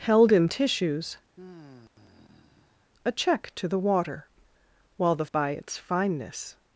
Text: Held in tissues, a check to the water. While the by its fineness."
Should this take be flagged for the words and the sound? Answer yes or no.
yes